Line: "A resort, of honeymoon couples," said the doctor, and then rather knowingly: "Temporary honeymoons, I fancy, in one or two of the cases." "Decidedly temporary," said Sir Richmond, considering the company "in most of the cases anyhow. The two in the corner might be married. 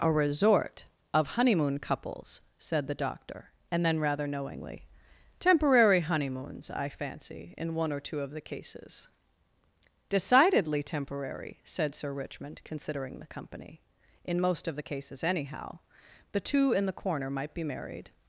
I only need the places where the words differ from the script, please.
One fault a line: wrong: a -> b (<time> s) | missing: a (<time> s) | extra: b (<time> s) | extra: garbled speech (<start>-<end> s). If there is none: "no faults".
no faults